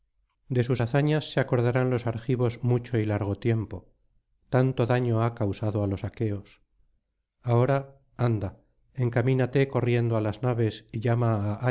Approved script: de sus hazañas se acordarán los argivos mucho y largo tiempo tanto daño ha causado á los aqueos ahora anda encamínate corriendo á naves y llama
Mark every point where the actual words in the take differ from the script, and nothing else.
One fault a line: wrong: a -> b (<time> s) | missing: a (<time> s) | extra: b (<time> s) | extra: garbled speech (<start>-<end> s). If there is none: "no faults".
extra: las (10.2 s)